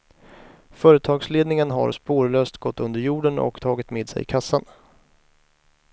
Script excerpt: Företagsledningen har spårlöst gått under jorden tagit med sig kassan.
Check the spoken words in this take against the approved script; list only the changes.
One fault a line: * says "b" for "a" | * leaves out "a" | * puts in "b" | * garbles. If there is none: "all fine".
* puts in "och"